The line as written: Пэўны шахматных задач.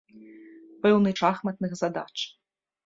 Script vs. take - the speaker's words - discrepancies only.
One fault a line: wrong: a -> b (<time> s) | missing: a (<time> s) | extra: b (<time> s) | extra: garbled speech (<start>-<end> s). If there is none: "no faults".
no faults